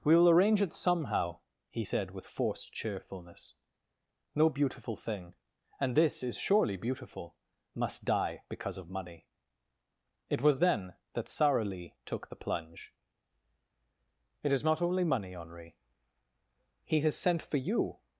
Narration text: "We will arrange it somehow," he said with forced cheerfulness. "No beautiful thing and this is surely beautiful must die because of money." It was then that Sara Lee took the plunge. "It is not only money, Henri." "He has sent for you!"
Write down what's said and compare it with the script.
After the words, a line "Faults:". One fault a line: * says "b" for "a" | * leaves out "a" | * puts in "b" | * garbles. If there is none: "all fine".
"We will arrange it somehow," he said with forced cheerfulness. "No beautiful thing and this is surely beautiful must die because of money." It was then that Sara Lee took the plunge. "It is not only money, Henri." "He has sent for you!"
Faults:
all fine